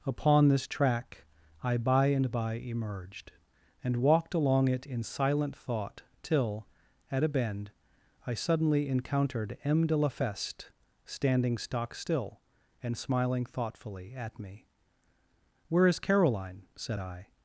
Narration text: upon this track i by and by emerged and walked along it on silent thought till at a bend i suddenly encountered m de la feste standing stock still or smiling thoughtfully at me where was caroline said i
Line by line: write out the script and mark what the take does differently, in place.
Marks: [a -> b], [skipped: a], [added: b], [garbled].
upon this track i by and by emerged and walked along it [on -> in] silent thought till at a bend i suddenly encountered m de la feste standing stock still [or -> and] smiling thoughtfully at me where [was -> is] caroline said i